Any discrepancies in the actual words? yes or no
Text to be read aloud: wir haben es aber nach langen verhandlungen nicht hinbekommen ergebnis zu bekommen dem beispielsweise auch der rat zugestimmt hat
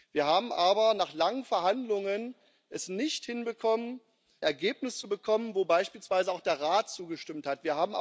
no